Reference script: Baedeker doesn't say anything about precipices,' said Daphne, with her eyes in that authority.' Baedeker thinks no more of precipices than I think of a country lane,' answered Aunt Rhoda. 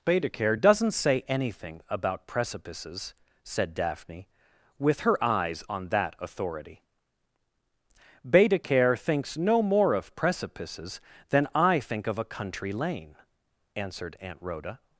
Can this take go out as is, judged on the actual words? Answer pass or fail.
fail